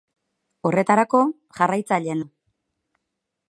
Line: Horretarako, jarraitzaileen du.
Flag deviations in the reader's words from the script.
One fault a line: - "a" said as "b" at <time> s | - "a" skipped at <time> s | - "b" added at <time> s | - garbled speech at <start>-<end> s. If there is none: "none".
none